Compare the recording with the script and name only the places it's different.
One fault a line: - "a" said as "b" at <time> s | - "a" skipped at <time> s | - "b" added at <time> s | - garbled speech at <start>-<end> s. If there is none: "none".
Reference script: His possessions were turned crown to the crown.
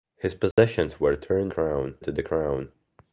none